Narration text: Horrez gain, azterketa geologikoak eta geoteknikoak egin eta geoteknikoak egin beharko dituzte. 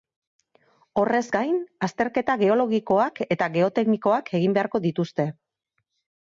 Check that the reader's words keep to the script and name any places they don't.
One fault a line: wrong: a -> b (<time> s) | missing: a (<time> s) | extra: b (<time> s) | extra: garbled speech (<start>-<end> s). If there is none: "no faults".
missing: eta geoteknikoak egin (4.6 s)